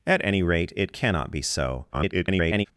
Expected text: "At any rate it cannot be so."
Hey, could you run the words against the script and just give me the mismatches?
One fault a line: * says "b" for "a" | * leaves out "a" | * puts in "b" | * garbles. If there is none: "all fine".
* garbles